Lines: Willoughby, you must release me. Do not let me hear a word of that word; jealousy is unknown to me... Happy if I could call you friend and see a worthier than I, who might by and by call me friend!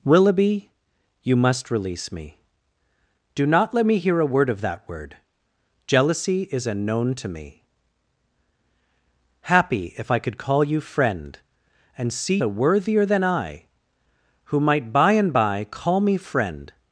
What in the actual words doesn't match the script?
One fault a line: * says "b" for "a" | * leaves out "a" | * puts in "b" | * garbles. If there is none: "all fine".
all fine